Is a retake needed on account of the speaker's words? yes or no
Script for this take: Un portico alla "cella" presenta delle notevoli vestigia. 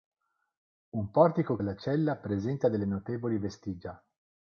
no